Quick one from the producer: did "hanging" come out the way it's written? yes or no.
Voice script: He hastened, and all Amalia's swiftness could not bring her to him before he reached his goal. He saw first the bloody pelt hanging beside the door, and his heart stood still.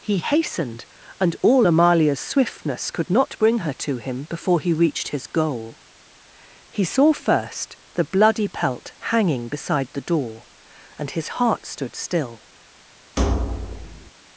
yes